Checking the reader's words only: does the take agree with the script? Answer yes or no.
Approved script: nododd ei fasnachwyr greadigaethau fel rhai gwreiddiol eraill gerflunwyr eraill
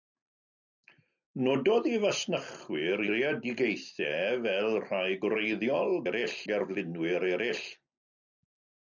yes